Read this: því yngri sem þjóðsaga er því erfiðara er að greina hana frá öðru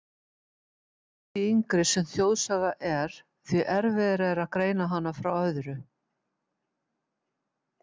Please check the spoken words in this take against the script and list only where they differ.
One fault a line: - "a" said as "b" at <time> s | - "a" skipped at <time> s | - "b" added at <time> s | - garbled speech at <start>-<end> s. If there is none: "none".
none